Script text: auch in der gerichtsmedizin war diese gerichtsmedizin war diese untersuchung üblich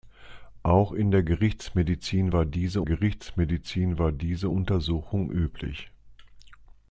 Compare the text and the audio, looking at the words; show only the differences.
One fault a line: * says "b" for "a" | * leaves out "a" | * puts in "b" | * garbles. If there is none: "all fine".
all fine